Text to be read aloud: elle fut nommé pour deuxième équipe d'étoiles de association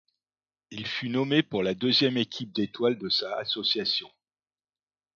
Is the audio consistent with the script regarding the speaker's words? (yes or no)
no